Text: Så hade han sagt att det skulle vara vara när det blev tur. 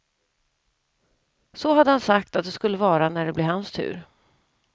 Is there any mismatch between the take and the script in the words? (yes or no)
yes